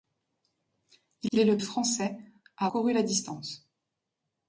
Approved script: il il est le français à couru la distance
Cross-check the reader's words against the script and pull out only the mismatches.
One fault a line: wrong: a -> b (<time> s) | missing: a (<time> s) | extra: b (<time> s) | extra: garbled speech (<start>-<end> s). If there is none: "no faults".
no faults